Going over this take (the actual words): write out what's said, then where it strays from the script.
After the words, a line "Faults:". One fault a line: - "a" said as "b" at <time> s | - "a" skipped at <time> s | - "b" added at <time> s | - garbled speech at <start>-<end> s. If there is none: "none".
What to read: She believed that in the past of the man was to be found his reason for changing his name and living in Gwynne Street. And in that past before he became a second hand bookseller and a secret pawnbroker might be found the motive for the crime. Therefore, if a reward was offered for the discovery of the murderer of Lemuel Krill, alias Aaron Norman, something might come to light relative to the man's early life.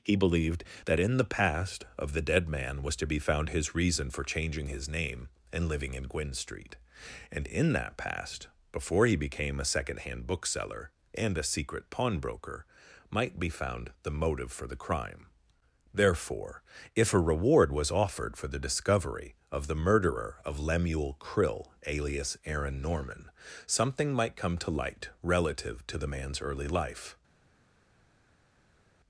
He believed that in the past of the dead man was to be found his reason for changing his name and living in Gwynne Street. And in that past before he became a second hand bookseller and a secret pawnbroker might be found the motive for the crime. Therefore, if a reward was offered for the discovery of the murderer of Lemuel Krill, alias Aaron Norman, something might come to light relative to the man's early life.
Faults:
- "She" said as "He" at 0.0 s
- "dead" added at 2.2 s